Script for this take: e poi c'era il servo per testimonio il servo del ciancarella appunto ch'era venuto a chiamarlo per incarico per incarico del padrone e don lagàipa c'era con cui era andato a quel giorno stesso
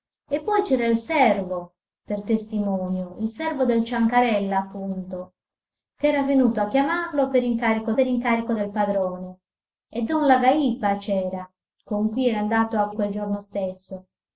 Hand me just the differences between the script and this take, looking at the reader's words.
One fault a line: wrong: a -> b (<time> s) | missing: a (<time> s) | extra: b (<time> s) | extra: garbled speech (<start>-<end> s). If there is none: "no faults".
no faults